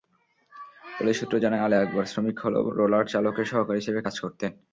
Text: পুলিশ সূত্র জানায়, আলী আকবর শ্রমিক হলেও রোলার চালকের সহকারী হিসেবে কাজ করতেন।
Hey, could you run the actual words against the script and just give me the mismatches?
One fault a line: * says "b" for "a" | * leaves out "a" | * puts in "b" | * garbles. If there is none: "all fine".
all fine